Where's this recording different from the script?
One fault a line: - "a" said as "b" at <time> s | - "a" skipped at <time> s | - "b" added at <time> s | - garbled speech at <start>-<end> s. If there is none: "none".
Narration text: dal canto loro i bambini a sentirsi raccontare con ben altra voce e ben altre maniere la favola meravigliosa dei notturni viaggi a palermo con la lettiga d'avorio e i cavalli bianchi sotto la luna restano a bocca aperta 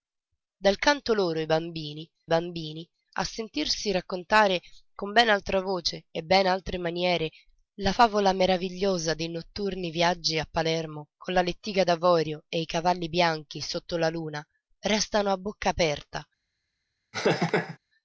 - "bambini" added at 2.3 s